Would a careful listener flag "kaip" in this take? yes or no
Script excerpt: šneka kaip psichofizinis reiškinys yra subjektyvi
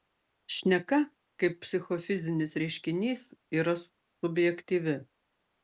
no